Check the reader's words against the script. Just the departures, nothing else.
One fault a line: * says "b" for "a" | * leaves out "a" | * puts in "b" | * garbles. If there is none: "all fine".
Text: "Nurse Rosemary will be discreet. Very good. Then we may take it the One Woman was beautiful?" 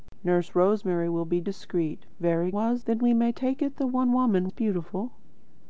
* says "was" for "good"
* leaves out "was"